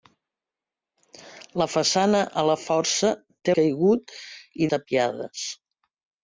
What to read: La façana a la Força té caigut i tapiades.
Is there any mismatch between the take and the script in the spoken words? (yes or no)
no